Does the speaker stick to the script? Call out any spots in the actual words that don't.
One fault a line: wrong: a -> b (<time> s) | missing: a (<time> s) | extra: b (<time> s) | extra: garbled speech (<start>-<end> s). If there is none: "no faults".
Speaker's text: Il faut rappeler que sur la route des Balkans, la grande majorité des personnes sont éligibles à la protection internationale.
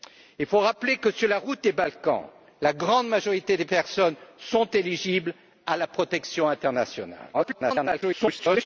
extra: garbled speech (7.3-8.7 s)